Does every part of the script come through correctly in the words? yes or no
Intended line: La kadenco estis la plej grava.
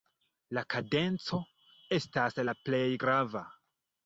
no